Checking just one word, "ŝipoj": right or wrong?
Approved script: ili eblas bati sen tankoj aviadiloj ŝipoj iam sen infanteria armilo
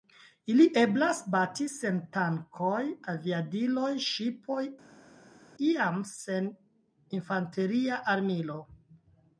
right